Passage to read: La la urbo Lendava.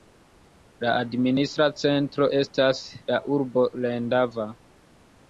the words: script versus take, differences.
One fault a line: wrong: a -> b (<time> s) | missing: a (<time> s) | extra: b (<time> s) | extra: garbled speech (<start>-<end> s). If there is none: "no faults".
extra: administra centro estas (1.0 s)